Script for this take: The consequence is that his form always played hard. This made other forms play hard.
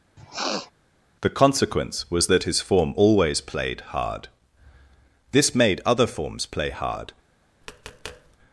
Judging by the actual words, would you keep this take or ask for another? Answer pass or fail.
fail